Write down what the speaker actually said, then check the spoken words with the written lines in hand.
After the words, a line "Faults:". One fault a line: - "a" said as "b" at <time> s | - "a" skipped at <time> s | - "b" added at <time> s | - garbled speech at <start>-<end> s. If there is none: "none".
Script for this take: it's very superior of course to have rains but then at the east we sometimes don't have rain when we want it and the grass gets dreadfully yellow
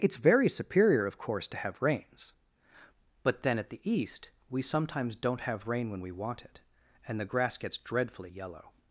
it's very superior of course to have rains but then at the east we sometimes don't have rain when we want it and the grass gets dreadfully yellow
Faults:
none